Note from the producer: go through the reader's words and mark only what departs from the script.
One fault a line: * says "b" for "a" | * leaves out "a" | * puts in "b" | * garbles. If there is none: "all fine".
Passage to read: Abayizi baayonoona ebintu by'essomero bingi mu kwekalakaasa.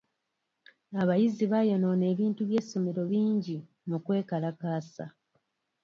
all fine